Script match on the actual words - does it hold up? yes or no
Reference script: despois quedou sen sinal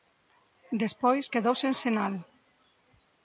yes